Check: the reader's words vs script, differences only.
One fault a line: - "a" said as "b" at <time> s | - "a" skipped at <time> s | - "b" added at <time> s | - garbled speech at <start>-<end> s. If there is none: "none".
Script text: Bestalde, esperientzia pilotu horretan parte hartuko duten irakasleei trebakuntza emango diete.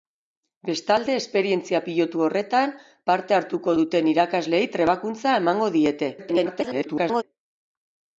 - garbled speech at 6.2-7.2 s